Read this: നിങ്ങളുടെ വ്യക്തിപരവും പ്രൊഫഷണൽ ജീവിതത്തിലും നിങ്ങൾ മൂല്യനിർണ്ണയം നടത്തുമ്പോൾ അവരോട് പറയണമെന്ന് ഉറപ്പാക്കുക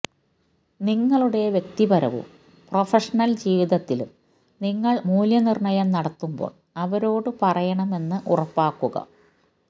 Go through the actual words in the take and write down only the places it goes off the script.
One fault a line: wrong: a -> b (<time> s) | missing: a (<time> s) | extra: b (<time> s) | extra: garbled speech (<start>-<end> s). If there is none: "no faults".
no faults